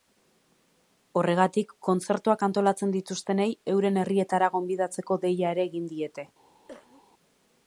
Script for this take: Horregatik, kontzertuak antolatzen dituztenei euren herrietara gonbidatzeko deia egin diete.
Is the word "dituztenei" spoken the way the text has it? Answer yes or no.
yes